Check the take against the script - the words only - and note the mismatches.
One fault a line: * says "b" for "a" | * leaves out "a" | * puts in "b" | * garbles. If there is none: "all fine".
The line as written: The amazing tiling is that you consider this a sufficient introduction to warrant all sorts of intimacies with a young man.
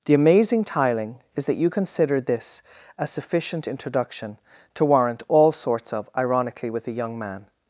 * says "ironically" for "intimacies"